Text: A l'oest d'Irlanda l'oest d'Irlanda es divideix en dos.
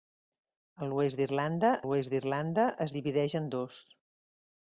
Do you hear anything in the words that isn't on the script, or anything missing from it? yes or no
no